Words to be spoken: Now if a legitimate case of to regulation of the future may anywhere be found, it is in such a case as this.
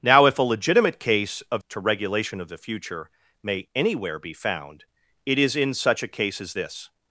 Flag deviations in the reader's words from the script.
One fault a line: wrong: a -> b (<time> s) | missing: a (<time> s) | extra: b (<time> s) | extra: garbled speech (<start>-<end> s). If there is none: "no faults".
no faults